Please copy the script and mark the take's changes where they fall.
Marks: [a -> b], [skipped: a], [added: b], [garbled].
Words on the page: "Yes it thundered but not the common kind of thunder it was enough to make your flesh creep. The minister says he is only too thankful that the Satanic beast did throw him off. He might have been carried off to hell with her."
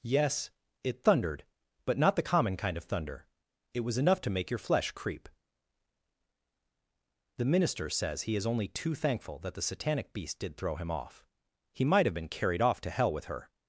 "Yes it thundered but not the common kind of thunder it was enough to make your flesh creep. The minister says he is only too thankful that the Satanic beast did throw him off. He might have been carried off to hell with her."